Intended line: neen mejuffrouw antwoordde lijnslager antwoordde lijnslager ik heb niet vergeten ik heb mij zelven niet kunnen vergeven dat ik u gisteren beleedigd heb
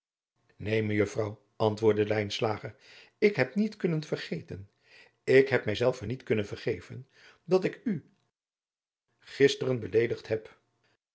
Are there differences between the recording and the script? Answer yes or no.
yes